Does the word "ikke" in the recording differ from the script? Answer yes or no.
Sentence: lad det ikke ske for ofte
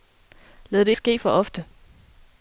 yes